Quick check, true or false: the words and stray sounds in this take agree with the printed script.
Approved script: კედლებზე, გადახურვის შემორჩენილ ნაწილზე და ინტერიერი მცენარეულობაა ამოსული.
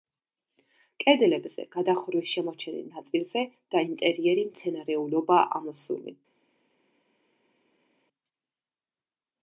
true